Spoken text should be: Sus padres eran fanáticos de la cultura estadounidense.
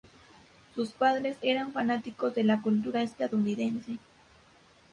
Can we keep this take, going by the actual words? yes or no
yes